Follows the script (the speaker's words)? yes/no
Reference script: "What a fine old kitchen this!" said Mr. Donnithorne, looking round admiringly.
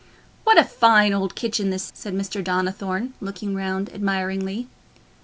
yes